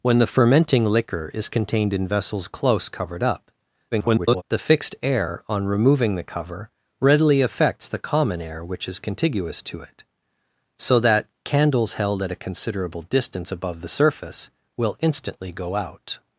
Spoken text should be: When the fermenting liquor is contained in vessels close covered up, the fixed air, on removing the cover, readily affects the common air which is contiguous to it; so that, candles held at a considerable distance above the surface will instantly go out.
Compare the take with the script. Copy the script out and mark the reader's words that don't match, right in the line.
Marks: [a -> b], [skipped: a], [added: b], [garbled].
When the fermenting liquor is contained in vessels close covered up, [garbled] the fixed air, on removing the cover, readily affects the common air which is contiguous to it; so that, candles held at a considerable distance above the surface will instantly go out.